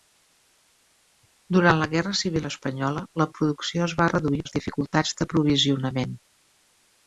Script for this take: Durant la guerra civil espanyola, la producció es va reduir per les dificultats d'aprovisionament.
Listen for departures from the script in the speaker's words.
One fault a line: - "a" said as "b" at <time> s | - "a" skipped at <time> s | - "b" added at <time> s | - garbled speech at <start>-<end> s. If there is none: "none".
- "per" skipped at 4.4 s